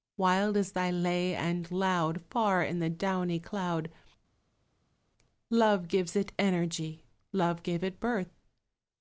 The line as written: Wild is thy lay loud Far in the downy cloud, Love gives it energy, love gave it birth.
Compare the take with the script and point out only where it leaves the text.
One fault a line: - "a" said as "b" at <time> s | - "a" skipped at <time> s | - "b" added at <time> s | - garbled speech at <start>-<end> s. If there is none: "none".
- "and" added at 1.4 s